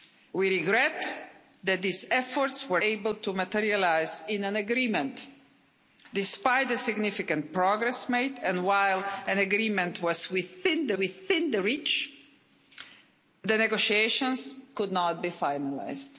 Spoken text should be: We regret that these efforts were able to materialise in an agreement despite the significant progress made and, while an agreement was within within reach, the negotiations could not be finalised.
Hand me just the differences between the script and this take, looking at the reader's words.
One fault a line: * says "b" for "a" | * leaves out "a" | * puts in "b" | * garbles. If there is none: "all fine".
all fine